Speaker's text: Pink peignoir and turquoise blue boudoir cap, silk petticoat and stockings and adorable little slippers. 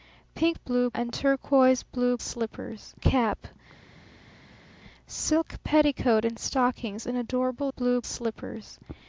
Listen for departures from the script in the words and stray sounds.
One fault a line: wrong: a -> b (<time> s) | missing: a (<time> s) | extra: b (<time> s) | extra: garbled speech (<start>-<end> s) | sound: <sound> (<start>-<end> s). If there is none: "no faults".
wrong: peignoir -> blue (0.6 s)
wrong: boudoir -> slippers (2.2 s)
wrong: little -> blue (7.7 s)